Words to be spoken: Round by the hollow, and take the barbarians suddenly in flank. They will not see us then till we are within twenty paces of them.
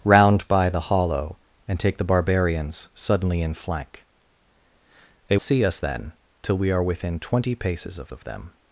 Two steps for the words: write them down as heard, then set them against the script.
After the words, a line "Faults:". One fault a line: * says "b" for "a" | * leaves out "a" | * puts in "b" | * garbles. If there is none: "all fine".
Round by the hollow, and take the barbarians suddenly in flank. They see us then till we are within twenty paces of of them.
Faults:
* leaves out "will not"
* puts in "of"